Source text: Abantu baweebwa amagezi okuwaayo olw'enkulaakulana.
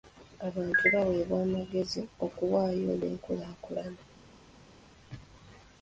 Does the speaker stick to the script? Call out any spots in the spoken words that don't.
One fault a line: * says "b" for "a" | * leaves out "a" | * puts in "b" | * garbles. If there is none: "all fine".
all fine